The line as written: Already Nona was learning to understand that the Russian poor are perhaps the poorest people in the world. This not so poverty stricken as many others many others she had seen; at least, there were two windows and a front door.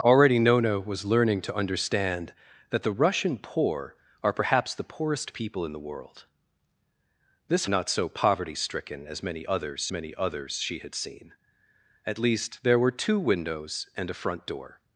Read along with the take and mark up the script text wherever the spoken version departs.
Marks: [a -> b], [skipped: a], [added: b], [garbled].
Already Nona was learning to understand that the Russian poor are perhaps the poorest people in the world. This not so poverty stricken as many others many others she had seen; at least, there were two windows and a front door.